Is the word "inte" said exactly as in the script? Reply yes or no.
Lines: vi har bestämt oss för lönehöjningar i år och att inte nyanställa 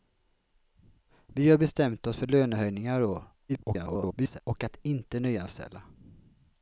yes